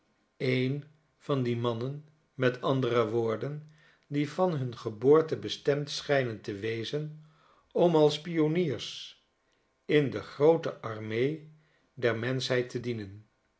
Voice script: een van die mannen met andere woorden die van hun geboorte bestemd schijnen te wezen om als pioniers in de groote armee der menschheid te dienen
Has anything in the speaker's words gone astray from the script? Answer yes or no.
no